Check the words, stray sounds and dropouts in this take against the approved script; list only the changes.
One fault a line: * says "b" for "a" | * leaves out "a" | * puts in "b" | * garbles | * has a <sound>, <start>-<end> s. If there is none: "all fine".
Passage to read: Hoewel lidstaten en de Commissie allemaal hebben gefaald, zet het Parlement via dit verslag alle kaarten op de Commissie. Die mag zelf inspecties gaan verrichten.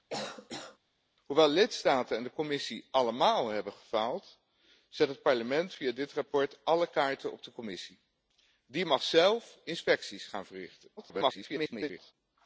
* has a cough, 0.1-0.8 s
* garbles